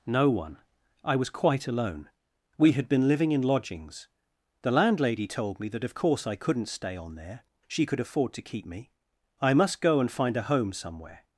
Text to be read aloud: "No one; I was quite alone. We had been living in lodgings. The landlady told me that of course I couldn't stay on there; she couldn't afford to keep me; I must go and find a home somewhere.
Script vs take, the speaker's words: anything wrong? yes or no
yes